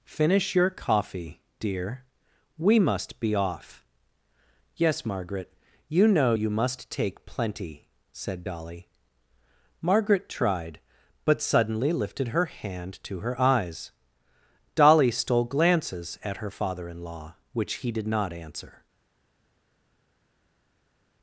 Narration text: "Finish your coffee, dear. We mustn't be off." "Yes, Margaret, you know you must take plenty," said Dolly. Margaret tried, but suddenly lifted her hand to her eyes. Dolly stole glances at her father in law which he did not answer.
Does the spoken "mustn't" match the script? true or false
false